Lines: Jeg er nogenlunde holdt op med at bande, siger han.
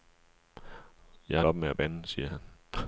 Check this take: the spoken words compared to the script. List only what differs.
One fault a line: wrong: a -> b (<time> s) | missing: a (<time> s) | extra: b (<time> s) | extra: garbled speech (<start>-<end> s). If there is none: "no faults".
missing: nogenlunde holdt (1.4 s)